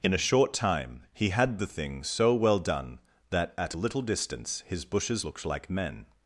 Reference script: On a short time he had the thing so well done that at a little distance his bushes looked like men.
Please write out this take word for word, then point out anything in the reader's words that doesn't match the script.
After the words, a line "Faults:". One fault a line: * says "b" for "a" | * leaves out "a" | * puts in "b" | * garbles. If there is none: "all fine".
In a short time he had the thing so well done that at a little distance his bushes looked like men.
Faults:
* says "In" for "On"